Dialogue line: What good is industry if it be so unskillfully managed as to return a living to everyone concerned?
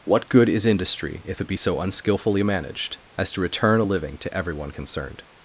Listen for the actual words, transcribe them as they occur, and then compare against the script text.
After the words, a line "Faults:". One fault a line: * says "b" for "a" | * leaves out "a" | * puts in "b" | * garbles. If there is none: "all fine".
What good is industry if it be so unskillfully managed as to return a living to everyone concerned?
Faults:
all fine